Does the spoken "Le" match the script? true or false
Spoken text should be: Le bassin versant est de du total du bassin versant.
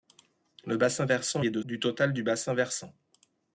true